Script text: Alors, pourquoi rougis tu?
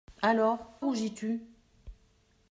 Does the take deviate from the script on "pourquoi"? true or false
true